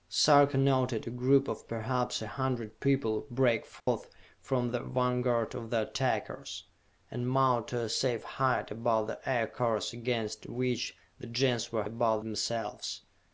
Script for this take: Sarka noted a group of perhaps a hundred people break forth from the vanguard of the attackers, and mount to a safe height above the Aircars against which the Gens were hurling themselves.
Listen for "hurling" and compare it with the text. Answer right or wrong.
wrong